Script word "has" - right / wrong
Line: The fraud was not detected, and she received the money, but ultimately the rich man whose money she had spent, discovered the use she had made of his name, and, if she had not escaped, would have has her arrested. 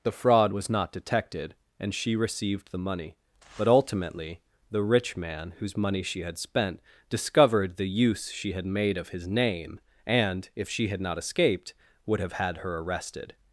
wrong